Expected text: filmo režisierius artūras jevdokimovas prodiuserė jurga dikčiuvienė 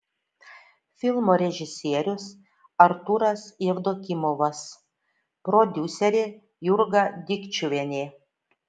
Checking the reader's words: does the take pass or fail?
pass